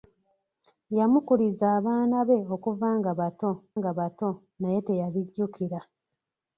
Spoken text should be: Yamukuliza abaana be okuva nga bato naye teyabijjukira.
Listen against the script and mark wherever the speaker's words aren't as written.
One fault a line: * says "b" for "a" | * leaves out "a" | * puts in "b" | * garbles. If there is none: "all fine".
* puts in "nga bato"